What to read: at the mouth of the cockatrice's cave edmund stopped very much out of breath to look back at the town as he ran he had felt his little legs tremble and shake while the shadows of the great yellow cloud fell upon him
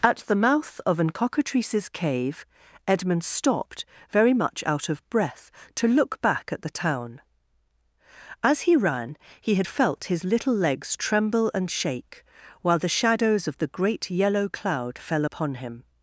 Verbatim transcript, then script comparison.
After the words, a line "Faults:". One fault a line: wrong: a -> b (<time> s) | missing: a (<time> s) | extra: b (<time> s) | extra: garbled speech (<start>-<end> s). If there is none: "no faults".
at the mouth of an cockatrice's cave edmund stopped very much out of breath to look back at the town as he ran he had felt his little legs tremble and shake while the shadows of the great yellow cloud fell upon him
Faults:
wrong: the -> an (1.0 s)